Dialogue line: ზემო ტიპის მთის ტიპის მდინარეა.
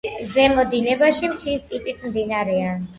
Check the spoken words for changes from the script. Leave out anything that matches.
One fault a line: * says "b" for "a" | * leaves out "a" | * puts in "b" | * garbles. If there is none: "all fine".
* says "დინებაში" for "ტიპის"